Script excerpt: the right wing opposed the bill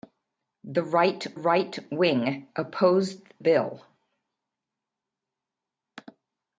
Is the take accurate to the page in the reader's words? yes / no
no